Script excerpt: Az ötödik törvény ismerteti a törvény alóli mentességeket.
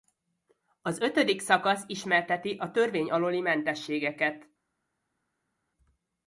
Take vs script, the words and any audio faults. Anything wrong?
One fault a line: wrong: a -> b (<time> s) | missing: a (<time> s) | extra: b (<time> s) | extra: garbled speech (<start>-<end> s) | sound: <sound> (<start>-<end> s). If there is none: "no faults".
wrong: törvény -> szakasz (1.4 s)